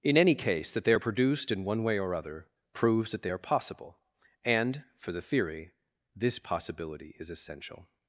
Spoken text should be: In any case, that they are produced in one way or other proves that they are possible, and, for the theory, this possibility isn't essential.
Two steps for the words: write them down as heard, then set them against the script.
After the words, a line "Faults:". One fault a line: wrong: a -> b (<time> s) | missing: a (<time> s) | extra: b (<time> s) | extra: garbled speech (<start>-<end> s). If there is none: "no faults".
In any case, that they are produced in one way or other proves that they are possible, and, for the theory, this possibility is essential.
Faults:
wrong: isn't -> is (7.2 s)